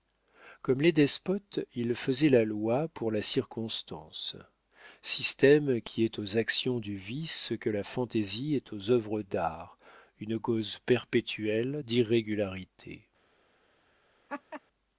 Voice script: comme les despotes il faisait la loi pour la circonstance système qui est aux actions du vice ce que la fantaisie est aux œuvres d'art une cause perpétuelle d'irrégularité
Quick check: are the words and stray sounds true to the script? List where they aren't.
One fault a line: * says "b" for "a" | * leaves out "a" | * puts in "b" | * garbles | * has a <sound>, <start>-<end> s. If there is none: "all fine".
* has a laugh, 14.3-14.6 s